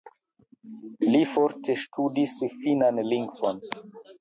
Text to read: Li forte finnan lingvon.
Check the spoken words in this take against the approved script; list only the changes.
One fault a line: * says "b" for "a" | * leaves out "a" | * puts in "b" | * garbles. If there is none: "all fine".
* puts in "ŝtudis"